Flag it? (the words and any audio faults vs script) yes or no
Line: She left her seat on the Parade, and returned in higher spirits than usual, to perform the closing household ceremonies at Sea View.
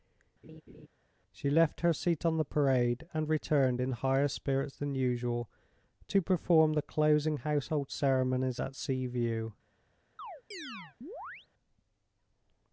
yes